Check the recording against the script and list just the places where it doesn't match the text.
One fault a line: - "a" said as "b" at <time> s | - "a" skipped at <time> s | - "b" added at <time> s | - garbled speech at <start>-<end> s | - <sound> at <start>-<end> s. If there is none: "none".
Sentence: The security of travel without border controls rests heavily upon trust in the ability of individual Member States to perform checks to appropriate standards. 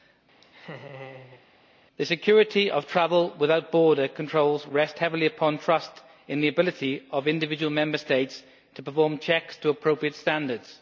- laugh at 0.4-1.5 s